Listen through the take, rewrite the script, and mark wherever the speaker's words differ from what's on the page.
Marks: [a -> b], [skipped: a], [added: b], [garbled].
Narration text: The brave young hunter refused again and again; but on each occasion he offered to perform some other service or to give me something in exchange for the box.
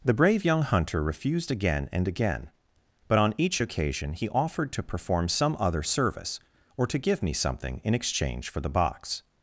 The brave young hunter refused again and again; but on each occasion he offered to perform some other service or to give me something in exchange for the box.